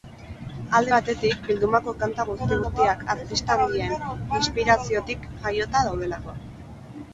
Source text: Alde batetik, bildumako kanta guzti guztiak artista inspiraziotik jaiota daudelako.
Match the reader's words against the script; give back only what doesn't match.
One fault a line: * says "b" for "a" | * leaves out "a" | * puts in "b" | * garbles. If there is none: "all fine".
* puts in "handien"